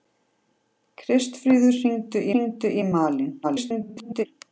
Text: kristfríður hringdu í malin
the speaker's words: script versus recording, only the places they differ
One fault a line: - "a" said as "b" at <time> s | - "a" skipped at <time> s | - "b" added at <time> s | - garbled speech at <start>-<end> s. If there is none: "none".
- "hringdu" added at 2.3 s
- garbled speech at 3.4-4.3 s